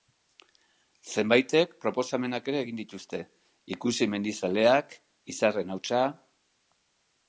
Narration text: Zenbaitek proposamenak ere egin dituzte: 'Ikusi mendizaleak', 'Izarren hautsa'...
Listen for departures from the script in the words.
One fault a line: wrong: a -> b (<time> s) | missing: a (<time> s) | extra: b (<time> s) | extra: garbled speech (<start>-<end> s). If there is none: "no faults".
no faults